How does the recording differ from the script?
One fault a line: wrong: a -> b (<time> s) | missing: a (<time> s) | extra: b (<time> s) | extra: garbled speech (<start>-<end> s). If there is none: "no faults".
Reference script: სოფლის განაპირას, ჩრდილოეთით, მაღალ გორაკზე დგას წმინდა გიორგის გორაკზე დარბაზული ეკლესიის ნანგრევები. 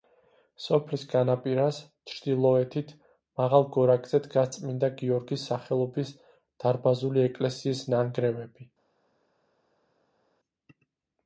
wrong: გორაკზე -> სახელობის (5.5 s)